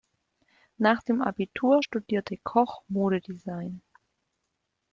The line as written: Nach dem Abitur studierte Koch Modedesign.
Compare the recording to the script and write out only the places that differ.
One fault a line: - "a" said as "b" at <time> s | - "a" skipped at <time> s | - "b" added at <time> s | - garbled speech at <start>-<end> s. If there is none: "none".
none